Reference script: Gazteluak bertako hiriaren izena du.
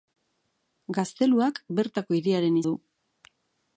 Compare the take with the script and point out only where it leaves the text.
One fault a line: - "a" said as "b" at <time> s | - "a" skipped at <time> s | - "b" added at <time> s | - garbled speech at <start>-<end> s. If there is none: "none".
- "izena" skipped at 2.6 s